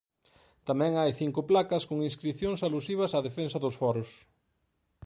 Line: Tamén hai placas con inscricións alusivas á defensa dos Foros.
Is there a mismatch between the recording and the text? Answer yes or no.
yes